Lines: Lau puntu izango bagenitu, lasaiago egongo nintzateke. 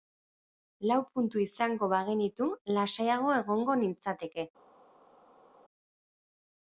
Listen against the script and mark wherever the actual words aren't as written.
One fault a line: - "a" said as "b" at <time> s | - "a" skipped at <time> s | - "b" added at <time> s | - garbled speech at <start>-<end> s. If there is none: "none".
none